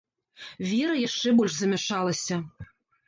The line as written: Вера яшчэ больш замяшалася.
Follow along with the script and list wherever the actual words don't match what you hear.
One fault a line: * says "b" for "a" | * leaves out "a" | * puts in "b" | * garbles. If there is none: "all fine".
all fine